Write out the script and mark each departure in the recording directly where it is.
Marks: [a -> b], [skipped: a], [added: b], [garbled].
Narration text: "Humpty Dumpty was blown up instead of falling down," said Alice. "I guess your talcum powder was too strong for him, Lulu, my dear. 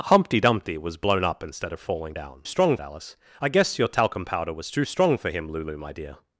"Humpty Dumpty was blown up instead of falling down," [said -> strong] Alice. "I guess your talcum powder was too strong for him, Lulu, my dear.